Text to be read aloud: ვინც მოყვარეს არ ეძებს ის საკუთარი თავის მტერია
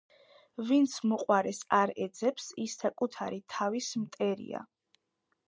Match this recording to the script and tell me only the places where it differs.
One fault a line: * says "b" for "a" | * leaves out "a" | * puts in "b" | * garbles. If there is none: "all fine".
all fine